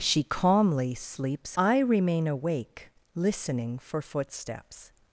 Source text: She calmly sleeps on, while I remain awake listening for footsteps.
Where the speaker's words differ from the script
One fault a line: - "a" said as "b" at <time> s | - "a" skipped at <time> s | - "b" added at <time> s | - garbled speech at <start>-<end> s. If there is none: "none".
- "on while" skipped at 1.6 s